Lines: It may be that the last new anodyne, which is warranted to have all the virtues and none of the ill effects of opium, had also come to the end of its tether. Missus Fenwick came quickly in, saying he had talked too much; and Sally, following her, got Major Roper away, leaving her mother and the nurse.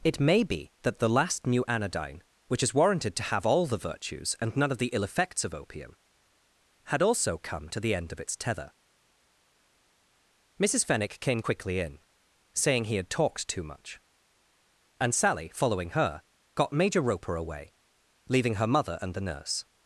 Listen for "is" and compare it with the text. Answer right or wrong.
right